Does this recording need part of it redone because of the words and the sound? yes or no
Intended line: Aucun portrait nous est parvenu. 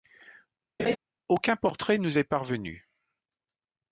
yes